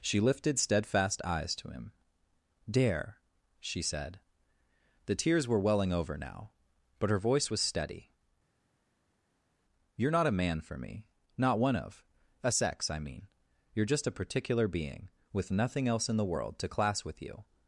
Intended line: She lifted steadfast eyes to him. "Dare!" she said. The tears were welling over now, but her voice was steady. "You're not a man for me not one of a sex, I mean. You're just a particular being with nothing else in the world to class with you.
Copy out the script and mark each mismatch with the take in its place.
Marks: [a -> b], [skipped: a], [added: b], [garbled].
She lifted steadfast eyes to him. "Dare!" she said. The tears were welling over now, but her voice was steady. "You're not a man for me not one of a sex, I mean. You're just a particular being with nothing else in the world to class with you.